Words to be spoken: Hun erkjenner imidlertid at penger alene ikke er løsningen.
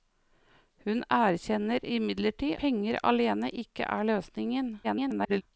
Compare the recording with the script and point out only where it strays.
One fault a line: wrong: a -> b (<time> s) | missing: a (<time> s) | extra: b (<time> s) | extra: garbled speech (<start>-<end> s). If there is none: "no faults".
missing: at (2.6 s)
extra: garbled speech (4.8-5.4 s)